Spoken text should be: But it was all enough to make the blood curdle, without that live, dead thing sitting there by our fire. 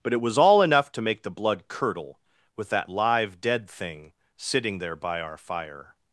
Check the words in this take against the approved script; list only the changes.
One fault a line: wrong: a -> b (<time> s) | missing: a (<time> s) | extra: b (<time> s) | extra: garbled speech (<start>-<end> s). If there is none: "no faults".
wrong: without -> with (2.5 s)